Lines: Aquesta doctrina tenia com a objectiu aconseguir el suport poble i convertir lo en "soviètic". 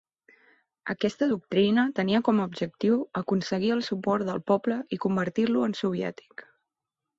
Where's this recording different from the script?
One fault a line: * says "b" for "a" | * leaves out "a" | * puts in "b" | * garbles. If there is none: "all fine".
* puts in "del"